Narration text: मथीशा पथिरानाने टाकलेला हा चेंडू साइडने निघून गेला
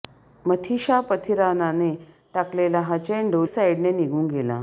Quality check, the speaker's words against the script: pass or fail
pass